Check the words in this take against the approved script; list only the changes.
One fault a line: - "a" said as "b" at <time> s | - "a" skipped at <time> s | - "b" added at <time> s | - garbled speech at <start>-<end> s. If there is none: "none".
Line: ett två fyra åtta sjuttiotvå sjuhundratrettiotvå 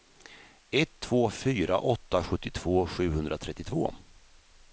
none